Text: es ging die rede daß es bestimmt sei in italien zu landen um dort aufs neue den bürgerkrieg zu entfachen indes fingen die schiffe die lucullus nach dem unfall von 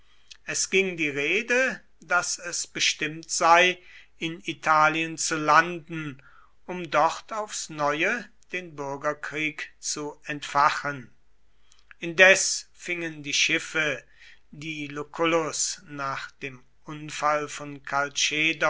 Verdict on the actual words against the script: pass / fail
pass